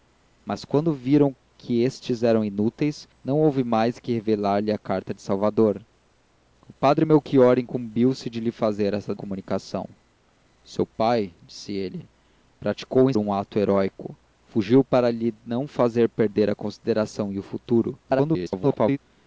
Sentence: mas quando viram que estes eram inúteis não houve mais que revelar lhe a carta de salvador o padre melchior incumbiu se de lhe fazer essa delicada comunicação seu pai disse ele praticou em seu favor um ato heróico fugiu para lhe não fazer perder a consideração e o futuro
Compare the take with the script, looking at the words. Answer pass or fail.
fail